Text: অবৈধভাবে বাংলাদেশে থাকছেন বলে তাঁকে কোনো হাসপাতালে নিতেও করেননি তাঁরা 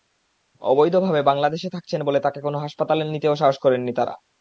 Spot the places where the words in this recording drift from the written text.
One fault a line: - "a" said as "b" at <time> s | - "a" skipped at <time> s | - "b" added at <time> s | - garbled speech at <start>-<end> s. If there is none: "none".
- "সাহস" added at 3.4 s